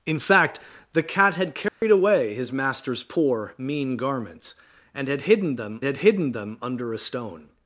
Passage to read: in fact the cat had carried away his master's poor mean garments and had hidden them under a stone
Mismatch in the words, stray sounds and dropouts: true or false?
true